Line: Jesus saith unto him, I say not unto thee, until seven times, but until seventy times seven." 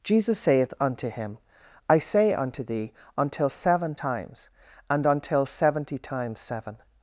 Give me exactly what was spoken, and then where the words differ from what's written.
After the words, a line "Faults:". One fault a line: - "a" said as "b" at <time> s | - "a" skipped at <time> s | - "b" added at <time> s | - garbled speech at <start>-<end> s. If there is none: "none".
Jesus saith unto him, I say unto thee, until seven times, and until seventy times seven."
Faults:
- "not" skipped at 2.3 s
- "but" said as "and" at 4.9 s